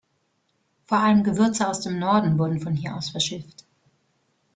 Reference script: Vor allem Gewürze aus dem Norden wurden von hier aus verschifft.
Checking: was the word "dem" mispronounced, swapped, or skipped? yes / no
no